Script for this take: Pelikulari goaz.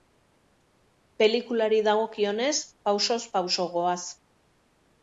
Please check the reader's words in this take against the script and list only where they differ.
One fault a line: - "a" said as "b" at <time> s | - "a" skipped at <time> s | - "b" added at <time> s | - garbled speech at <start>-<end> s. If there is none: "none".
- "dagokionez pausoz pauso" added at 1.9 s